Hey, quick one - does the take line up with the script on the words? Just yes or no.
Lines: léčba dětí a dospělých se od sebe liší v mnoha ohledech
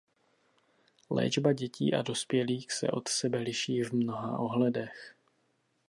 yes